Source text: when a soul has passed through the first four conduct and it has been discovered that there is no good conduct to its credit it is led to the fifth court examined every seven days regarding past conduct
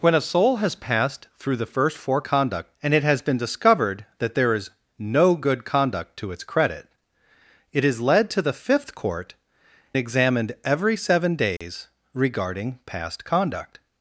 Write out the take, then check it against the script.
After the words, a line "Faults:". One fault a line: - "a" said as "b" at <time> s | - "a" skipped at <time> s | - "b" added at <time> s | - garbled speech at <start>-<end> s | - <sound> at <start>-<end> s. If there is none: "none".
when a soul has passed through the first four conduct and it has been discovered that there is no good conduct to its credit it is led to the fifth court examined every seven days regarding past conduct
Faults:
- dropout at 11.6-11.6 s